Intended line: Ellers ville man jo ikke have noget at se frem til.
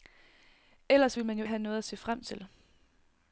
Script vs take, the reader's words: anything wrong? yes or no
yes